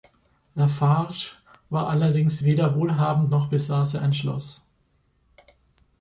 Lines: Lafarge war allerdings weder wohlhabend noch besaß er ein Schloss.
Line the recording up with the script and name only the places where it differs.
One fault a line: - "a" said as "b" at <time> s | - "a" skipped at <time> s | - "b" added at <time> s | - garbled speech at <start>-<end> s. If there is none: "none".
none